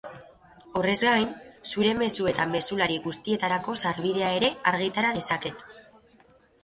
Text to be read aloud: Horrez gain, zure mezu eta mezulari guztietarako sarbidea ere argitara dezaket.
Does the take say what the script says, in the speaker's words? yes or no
yes